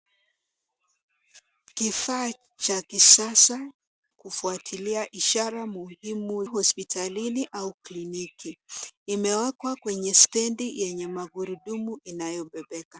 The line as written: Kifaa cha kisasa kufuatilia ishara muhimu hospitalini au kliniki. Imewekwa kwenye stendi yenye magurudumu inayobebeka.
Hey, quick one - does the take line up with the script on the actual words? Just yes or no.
yes